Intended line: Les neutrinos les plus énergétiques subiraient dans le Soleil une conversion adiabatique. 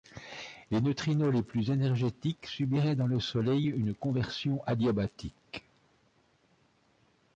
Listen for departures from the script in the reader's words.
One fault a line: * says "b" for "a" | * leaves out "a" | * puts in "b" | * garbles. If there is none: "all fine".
all fine